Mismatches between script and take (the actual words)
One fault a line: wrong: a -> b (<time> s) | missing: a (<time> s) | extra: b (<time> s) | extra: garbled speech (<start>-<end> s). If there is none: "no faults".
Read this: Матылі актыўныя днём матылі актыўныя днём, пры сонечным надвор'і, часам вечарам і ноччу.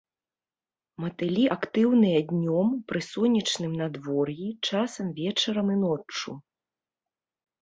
missing: матылі актыўныя днём (2.7 s)